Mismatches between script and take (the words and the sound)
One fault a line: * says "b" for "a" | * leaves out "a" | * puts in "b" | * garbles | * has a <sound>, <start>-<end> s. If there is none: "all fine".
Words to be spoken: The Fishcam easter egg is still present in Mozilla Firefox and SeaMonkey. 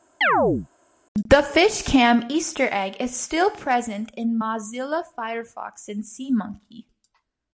* has a chirp, 0.2-0.7 s